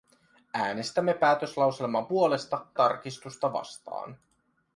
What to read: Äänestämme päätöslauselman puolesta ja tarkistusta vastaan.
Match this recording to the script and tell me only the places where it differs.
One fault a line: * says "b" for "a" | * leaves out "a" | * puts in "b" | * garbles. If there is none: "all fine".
* leaves out "ja"